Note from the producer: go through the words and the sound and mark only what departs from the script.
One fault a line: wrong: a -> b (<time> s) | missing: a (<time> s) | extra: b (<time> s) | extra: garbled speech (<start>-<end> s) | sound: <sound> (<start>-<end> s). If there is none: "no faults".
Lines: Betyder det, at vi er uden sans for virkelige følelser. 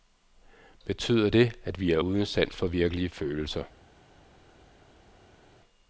no faults